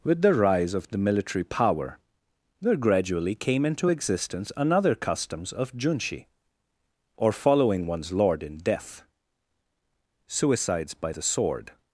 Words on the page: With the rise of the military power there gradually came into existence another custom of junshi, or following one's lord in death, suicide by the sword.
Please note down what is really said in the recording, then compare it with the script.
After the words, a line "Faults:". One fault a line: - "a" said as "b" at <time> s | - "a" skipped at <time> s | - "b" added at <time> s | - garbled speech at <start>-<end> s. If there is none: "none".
With the rise of the military power there gradually came into existence another customs of junshi, or following one's lord in death, suicides by the sword.
Faults:
- "custom" said as "customs" at 4.9 s
- "suicide" said as "suicides" at 10.3 s